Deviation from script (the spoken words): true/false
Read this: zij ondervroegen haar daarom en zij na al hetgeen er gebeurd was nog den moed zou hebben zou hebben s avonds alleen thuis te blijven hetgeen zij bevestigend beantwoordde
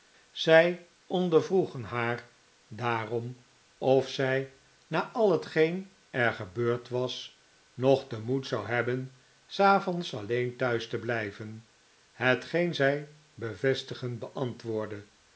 true